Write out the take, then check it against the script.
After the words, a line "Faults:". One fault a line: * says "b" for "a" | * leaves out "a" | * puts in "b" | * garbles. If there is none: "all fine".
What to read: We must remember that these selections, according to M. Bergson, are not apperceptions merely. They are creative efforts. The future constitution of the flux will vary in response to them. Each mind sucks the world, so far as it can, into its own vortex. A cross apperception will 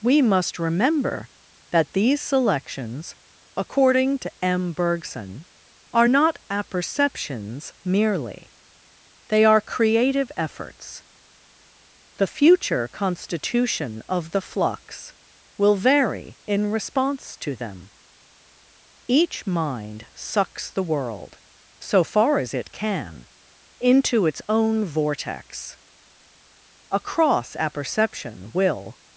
We must remember that these selections, according to M. Bergson, are not apperceptions merely. They are creative efforts. The future constitution of the flux will vary in response to them. Each mind sucks the world, so far as it can, into its own vortex. A cross apperception will
Faults:
all fine